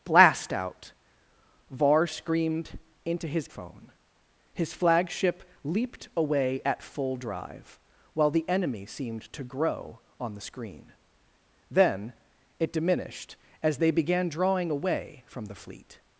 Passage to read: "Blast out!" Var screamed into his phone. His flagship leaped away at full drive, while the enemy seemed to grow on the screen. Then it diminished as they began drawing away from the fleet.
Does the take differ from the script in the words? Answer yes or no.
no